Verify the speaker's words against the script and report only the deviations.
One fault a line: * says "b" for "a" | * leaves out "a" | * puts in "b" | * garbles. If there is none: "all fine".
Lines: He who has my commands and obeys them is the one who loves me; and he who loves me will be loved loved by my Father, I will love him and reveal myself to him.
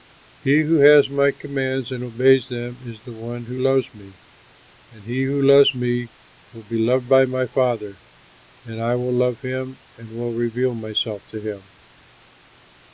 * leaves out "loved"
* puts in "and"
* puts in "will"